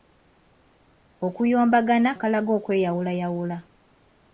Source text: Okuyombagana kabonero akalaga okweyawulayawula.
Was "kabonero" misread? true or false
true